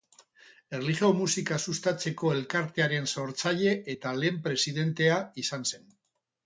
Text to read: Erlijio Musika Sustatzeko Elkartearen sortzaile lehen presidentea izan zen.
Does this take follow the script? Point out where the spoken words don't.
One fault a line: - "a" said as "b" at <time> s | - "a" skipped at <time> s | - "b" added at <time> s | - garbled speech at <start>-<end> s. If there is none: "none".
- "eta" added at 4.0 s